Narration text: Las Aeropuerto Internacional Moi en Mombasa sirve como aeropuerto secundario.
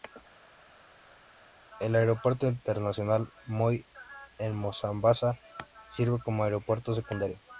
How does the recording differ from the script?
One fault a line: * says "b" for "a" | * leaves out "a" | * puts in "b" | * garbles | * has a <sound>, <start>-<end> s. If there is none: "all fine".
* says "El" for "Las"